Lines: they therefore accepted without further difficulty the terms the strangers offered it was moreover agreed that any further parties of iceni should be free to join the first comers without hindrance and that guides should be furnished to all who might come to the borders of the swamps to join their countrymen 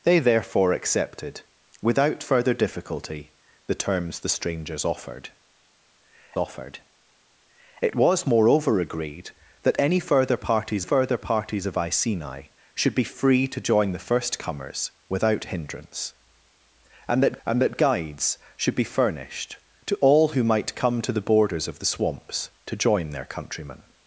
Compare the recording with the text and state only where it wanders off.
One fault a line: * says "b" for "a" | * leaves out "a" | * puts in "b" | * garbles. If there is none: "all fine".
* puts in "offered"
* puts in "further parties"
* puts in "and that"